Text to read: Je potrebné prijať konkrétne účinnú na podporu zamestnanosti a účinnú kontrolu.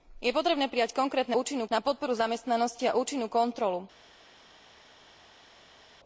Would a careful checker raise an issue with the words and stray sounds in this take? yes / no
no